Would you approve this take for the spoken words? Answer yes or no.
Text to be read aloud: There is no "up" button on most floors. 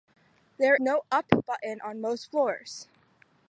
no